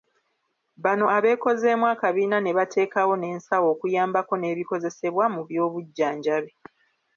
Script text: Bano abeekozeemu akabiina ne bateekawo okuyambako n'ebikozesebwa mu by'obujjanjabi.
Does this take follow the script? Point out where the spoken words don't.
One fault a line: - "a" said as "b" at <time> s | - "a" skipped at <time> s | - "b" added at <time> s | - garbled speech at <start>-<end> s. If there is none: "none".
- "n'ensawo" added at 3.2 s